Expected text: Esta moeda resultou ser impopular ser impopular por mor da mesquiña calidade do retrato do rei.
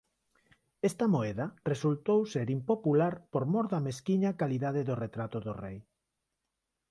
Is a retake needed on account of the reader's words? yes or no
yes